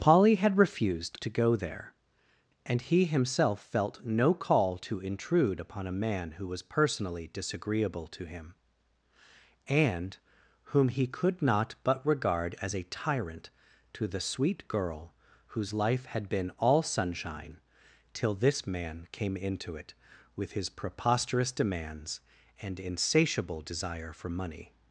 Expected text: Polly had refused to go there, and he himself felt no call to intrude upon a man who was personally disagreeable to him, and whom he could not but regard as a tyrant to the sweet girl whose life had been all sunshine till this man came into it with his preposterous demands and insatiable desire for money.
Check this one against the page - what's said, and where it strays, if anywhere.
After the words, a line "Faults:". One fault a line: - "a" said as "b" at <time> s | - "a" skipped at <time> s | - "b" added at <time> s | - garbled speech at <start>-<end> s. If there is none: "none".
Polly had refused to go there, and he himself felt no call to intrude upon a man who was personally disagreeable to him, and whom he could not but regard as a tyrant to the sweet girl whose life had been all sunshine till this man came into it with his preposterous demands and insatiable desire for money.
Faults:
none